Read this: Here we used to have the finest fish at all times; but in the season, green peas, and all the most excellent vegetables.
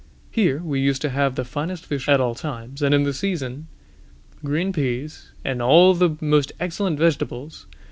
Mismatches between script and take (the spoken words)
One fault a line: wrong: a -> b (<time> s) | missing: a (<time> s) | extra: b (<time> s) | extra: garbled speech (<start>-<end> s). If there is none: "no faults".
wrong: but -> and (2.8 s)